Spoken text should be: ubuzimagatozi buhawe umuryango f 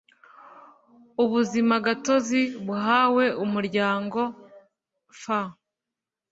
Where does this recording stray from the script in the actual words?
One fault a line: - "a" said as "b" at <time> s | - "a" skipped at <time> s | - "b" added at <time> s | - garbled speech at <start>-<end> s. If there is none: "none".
none